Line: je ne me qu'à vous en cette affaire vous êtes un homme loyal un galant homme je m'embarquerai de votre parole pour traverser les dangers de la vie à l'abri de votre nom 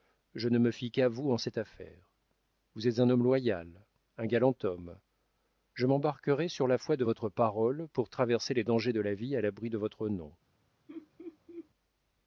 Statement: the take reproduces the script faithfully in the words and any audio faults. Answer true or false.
false